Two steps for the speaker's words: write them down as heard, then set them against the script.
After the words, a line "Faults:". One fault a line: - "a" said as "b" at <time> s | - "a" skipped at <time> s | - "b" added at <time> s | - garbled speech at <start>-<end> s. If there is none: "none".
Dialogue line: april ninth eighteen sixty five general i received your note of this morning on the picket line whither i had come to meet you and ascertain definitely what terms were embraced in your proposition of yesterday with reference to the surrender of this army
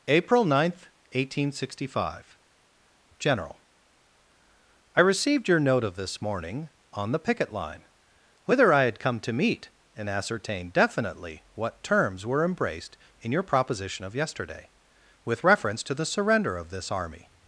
april ninth eighteen sixty five general i received your note of this morning on the picket line whither i had come to meet and ascertain definitely what terms were embraced in your proposition of yesterday with reference to the surrender of this army
Faults:
- "you" skipped at 9.7 s